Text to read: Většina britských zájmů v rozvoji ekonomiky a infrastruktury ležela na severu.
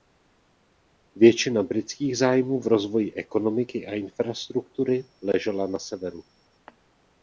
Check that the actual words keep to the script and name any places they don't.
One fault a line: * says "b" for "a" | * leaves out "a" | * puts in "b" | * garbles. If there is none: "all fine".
all fine